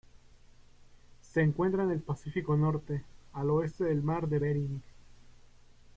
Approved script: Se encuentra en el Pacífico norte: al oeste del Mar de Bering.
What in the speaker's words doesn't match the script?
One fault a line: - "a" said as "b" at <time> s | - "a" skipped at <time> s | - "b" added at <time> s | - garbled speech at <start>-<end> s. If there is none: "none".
none